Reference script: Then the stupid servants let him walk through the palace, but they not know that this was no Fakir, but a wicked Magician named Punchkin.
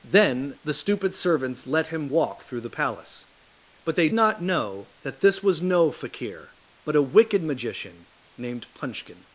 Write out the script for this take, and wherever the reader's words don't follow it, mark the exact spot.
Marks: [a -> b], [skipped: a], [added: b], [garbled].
Then the stupid servants let him walk through the palace, but they not know that this was no Fakir, but a wicked Magician named Punchkin.